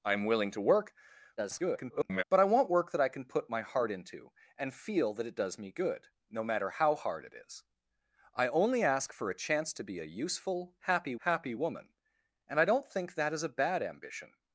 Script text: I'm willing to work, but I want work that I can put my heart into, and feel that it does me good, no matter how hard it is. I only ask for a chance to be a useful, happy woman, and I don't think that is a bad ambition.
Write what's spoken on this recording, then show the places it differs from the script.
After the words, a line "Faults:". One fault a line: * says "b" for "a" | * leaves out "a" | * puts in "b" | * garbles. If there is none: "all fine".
I'm willing to work, [garbled] but I want work that I can put my heart into, and feel that it does me good, no matter how hard it is. I only ask for a chance to be a useful, happy happy woman, and I don't think that is a bad ambition.
Faults:
* garbles
* puts in "happy"